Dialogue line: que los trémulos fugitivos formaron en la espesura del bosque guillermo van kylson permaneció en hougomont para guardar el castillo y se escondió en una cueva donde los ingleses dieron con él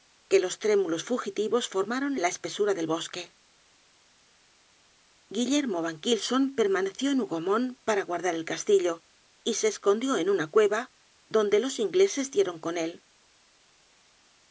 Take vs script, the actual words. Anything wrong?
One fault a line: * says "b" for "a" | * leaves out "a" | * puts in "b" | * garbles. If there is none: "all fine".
all fine